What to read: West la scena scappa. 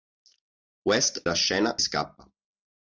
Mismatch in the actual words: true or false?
false